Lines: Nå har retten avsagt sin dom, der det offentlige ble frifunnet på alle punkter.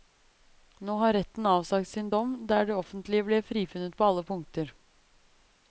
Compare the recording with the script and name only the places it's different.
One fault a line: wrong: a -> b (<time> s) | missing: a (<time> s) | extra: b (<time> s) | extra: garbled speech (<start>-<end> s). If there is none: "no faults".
no faults